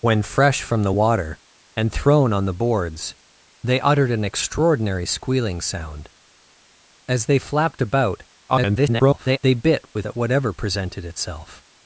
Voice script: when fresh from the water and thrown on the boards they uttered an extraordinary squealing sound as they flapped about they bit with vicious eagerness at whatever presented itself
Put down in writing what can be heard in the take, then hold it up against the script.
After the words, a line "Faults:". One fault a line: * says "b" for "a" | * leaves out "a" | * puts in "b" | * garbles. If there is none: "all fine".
when fresh from the water and thrown on the boards they uttered an extraordinary squealing sound as they flapped about [garbled] they bit with at whatever presented itself
Faults:
* garbles
* leaves out "vicious eagerness"